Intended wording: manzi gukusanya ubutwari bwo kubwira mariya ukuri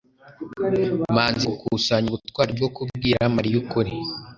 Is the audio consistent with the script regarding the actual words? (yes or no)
yes